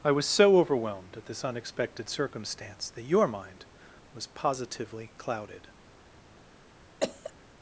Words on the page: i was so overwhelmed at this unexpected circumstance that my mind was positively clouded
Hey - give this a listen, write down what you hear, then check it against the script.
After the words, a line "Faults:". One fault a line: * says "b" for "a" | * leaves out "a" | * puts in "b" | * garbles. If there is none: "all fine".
i was so overwhelmed at this unexpected circumstance that your mind was positively clouded
Faults:
* says "your" for "my"